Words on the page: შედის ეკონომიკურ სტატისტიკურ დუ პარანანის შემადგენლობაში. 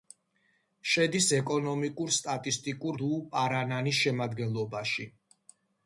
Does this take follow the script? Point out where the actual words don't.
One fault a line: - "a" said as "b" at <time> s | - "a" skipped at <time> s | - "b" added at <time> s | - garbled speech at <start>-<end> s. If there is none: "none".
none